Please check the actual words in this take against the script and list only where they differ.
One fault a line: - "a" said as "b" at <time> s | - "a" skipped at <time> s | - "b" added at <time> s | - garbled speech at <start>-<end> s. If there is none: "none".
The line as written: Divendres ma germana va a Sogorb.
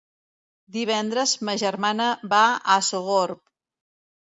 none